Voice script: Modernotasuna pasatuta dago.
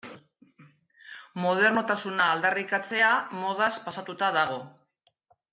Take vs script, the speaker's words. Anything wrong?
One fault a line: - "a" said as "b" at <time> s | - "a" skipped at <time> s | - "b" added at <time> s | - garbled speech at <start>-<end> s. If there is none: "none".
- "aldarrikatzea modaz" added at 2.4 s